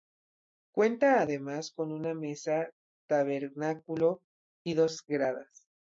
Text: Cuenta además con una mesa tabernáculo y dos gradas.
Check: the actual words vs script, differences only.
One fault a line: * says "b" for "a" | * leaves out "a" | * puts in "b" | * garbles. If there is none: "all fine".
all fine